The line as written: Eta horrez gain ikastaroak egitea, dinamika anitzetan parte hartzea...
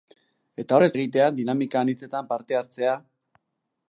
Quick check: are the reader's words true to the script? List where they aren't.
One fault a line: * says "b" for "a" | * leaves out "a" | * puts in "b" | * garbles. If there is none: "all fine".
* leaves out "gain ikastaroak"